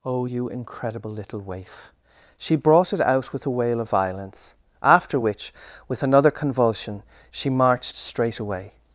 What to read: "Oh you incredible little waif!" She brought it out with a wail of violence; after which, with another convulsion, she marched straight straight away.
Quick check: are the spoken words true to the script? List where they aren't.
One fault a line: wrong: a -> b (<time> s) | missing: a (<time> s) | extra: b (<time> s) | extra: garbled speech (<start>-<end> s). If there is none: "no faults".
missing: straight (8.4 s)